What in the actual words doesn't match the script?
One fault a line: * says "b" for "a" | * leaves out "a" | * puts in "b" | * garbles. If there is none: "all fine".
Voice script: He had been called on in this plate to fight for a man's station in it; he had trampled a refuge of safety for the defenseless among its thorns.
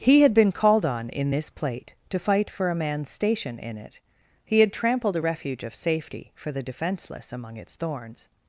all fine